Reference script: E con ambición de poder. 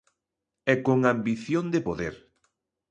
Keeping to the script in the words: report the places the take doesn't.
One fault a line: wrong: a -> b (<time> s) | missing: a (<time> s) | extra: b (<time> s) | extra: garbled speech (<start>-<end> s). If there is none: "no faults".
no faults